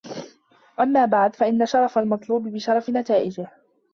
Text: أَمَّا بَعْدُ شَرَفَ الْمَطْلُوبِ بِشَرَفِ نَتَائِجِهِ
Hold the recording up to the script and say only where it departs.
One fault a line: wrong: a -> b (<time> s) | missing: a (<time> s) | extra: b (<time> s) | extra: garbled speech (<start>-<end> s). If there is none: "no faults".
extra: فَإِنَّ (1.4 s)